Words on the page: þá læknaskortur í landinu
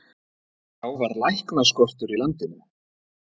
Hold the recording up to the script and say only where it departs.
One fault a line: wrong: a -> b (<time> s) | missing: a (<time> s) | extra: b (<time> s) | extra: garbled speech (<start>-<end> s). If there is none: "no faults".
extra: var (1.0 s)